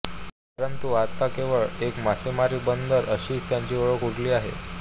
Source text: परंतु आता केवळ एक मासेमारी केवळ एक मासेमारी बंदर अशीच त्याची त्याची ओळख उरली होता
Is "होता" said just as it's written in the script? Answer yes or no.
no